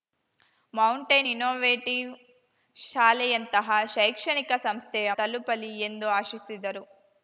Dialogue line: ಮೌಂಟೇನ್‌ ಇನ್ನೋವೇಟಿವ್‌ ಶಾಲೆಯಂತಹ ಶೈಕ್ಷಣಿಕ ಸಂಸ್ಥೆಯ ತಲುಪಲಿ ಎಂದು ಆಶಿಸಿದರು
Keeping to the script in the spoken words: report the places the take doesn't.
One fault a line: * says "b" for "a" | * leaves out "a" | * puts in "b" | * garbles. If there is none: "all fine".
all fine